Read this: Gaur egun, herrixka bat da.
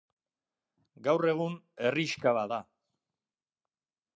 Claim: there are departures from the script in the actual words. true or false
false